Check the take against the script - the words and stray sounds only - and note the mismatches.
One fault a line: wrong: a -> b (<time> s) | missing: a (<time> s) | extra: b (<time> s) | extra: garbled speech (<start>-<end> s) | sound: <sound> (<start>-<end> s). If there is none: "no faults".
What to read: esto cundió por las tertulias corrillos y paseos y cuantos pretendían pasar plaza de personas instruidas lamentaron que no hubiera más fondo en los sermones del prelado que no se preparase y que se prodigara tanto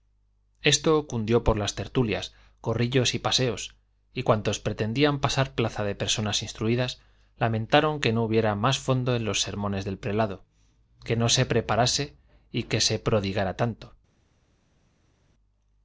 no faults